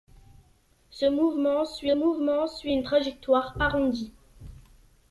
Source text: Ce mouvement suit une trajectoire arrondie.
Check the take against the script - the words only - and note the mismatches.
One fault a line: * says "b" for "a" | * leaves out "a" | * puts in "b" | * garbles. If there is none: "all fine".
* puts in "mouvement suit"